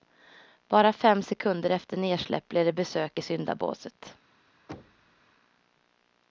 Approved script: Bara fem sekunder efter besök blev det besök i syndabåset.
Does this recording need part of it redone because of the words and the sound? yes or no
yes